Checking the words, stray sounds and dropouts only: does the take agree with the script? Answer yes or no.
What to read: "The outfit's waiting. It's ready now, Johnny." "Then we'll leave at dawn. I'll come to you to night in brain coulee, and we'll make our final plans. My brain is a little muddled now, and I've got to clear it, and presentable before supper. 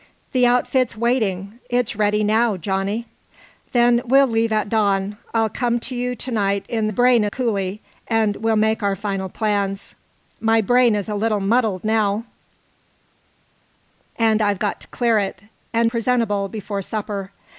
yes